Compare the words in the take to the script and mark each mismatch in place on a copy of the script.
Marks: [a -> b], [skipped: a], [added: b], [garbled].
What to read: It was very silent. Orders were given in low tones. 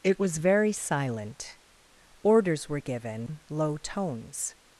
It was very silent. Orders were given [skipped: in] low tones.